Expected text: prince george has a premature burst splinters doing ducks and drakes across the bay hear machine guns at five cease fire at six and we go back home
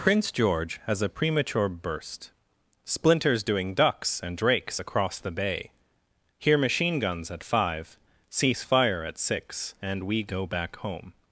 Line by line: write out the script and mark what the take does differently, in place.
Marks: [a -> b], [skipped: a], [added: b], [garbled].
prince george has a premature burst splinters doing ducks and drakes across the bay hear machine guns at five cease fire at six and we go back home